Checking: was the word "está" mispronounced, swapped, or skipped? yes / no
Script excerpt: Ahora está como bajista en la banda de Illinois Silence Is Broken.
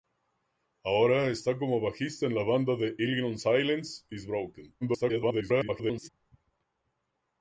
no